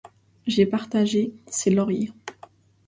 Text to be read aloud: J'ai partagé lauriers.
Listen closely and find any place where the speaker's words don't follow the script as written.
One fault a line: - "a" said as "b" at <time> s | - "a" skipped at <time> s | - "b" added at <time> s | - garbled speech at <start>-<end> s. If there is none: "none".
- "ses" added at 1.4 s